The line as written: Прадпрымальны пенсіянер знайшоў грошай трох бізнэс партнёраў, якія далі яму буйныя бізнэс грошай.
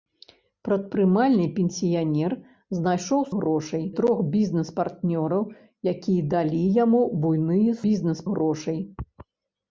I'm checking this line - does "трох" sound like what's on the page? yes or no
yes